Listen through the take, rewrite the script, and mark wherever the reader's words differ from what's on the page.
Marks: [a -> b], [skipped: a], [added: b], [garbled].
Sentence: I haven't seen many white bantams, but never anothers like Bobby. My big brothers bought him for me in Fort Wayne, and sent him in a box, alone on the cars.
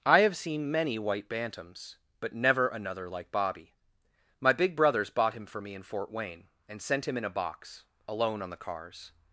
I [haven't -> have] seen many white bantams, but never [anothers -> another] like Bobby. My big brothers bought him for me in Fort Wayne, and sent him in a box, alone on the cars.